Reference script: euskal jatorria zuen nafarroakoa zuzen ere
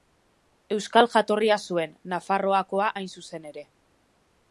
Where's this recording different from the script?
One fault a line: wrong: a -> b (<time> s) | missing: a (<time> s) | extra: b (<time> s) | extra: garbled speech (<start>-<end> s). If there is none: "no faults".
extra: hain (3.0 s)